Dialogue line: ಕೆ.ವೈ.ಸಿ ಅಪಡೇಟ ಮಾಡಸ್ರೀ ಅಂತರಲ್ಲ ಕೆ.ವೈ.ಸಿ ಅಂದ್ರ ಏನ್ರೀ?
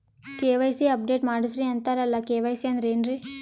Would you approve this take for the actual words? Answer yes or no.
yes